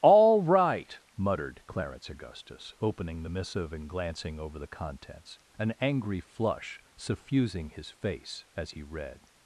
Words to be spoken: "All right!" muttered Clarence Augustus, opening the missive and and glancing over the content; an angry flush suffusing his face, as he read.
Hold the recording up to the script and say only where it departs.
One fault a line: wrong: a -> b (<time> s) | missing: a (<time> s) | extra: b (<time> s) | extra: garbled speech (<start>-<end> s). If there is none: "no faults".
missing: and (3.9 s)
wrong: content -> contents (4.7 s)